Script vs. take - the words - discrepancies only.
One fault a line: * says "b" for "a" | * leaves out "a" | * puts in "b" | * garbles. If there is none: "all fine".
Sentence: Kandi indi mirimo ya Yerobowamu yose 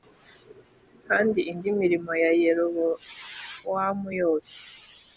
all fine